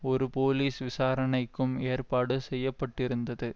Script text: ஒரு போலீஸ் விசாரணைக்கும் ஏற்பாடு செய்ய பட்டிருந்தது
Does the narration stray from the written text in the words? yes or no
no